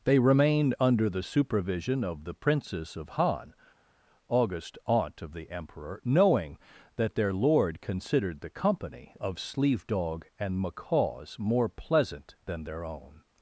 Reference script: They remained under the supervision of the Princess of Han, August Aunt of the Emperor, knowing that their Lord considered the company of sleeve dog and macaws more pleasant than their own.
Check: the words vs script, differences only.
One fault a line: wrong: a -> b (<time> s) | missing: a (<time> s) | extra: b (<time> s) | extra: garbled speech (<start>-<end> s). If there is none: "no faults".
no faults